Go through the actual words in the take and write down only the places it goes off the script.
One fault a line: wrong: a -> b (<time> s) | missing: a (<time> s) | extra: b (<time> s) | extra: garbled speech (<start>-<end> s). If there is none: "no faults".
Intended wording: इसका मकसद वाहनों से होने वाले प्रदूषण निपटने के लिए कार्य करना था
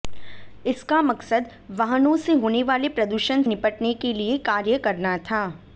no faults